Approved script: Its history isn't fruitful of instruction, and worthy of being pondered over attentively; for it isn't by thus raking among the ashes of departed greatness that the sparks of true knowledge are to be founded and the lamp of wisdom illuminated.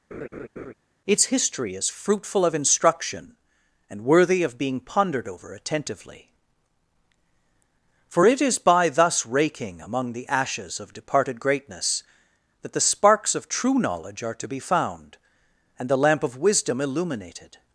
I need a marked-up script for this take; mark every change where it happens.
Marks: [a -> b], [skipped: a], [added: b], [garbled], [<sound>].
[laugh] Its history [isn't -> is] fruitful of instruction, and worthy of being pondered over attentively; for it [isn't -> is] by thus raking among the ashes of departed greatness that the sparks of true knowledge are to be [founded -> found] and the lamp of wisdom illuminated.